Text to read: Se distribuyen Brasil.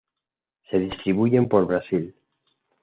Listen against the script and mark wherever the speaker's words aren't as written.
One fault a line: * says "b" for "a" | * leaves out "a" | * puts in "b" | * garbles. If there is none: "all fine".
* puts in "por"